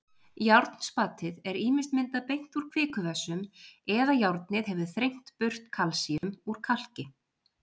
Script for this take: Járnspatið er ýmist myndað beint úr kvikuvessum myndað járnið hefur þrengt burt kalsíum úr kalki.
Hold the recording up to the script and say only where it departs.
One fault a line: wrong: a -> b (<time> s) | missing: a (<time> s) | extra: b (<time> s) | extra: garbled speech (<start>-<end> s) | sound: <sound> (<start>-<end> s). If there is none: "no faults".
wrong: myndað -> eða (4.0 s)
sound: dropout (6.2-6.2 s)